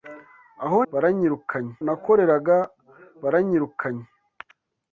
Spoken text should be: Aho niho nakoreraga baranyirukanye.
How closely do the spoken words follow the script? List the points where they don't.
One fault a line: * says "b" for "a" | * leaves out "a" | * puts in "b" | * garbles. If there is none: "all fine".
* says "baranyirukanye" for "niho"